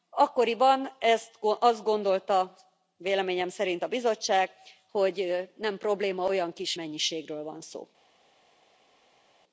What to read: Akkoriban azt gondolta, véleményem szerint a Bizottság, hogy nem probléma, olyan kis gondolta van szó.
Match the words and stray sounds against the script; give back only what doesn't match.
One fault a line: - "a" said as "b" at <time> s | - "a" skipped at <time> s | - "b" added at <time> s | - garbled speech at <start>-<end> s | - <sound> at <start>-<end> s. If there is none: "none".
- "gondolta" said as "mennyiségről" at 6.7 s